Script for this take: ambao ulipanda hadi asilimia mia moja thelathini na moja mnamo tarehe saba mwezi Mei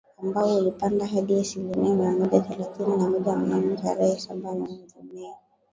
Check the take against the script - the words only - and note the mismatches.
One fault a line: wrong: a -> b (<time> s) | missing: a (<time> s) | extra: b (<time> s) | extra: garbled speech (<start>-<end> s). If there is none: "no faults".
no faults